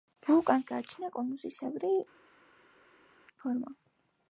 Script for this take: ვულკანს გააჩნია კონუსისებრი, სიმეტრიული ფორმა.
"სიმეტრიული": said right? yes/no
no